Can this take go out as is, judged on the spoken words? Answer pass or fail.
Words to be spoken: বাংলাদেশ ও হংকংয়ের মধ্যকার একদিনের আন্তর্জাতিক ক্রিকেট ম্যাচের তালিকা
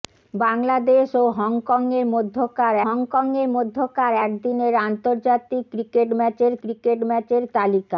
fail